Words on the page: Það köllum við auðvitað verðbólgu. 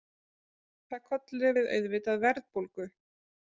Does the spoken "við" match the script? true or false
true